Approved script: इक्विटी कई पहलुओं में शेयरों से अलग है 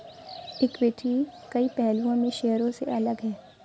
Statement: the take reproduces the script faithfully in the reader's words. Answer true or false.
true